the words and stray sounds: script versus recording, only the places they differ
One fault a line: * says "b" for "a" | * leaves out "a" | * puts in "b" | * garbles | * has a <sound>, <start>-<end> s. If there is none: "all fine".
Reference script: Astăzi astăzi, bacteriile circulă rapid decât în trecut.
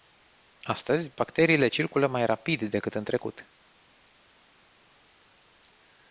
* leaves out "astăzi"
* puts in "mai"